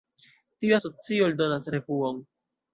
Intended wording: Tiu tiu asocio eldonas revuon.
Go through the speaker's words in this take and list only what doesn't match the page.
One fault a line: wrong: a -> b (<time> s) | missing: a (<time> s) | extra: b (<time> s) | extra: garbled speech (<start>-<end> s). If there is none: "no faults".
missing: tiu (0.8 s)